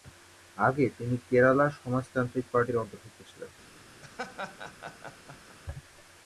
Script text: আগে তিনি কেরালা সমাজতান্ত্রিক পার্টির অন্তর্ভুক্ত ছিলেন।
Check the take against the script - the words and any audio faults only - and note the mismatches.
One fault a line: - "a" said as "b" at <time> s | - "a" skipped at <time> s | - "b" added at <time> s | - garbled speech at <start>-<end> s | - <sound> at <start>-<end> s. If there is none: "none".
- laugh at 4.0-5.6 s